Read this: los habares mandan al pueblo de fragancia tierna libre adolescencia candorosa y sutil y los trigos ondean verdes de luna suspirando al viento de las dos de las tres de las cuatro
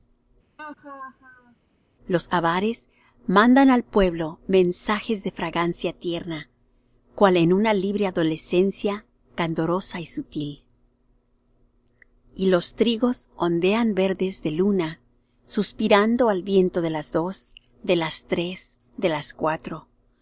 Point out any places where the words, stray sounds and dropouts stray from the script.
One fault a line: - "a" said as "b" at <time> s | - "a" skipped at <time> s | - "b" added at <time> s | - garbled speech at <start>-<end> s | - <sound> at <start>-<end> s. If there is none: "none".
- laugh at 0.6-1.6 s
- "mensajes" added at 4.5 s
- "cual en una" added at 7.2 s